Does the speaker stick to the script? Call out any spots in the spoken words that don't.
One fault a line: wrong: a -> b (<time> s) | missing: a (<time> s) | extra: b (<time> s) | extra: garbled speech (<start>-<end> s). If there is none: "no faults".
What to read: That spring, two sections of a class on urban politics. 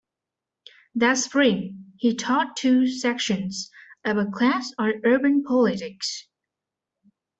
extra: he taught (2.0 s)